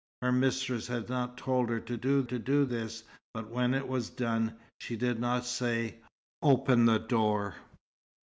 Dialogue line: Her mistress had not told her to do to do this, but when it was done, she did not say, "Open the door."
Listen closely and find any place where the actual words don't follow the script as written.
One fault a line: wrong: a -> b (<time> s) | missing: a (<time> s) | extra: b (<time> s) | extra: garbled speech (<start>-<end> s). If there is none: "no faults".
no faults